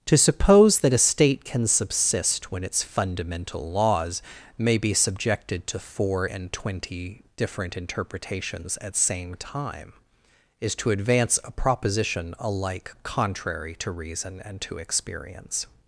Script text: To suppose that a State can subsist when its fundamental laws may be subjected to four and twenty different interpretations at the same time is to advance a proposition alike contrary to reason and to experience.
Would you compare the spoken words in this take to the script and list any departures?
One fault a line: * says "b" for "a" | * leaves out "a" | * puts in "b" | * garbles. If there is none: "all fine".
* leaves out "the"